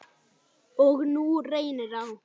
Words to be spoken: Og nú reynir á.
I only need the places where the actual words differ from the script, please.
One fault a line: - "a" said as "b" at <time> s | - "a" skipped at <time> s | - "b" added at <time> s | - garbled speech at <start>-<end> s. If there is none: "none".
none